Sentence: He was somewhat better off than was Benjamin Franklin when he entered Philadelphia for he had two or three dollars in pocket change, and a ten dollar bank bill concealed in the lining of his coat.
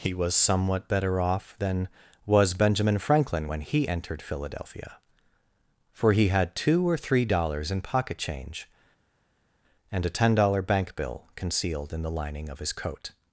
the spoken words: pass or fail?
pass